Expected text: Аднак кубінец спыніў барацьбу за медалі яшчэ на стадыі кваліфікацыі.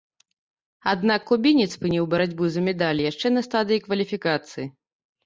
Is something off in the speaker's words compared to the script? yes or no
no